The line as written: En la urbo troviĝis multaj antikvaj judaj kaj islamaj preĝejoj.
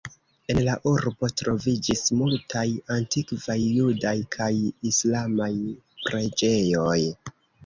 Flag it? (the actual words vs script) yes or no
no